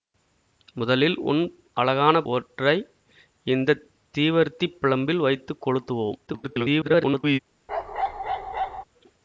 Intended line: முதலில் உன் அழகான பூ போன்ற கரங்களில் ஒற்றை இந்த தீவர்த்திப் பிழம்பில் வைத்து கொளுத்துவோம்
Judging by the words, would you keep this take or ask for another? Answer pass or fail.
fail